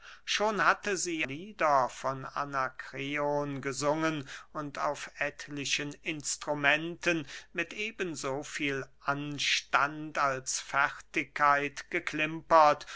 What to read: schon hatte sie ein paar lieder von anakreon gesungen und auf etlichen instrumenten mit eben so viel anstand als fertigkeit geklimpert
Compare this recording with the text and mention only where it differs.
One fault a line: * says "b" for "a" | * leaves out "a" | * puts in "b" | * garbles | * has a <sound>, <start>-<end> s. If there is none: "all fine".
* leaves out "ein paar"